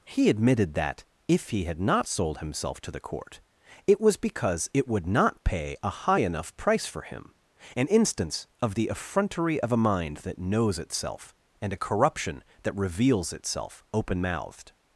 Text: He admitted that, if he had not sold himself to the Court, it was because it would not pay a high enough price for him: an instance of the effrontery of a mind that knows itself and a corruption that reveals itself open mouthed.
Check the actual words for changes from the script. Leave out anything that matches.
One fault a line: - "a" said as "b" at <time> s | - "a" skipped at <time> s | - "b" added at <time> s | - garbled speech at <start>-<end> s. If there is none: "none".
none